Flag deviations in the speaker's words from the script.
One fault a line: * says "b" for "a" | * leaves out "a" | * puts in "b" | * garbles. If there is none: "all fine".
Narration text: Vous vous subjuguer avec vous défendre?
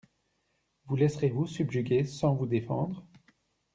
* puts in "laisserez"
* says "sans" for "avec"